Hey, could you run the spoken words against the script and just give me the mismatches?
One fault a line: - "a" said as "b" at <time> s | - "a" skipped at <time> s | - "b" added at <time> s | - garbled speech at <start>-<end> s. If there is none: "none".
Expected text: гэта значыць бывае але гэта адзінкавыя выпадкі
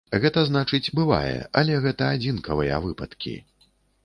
none